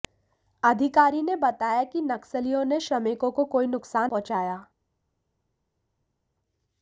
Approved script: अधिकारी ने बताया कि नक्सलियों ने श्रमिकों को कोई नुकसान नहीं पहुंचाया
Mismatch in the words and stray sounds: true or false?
true